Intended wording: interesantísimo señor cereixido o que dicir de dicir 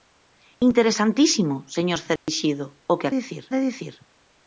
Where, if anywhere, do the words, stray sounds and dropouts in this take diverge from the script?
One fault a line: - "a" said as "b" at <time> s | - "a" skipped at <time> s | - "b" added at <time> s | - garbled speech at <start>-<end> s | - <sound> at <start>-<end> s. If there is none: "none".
- dropout at 2.2-2.3 s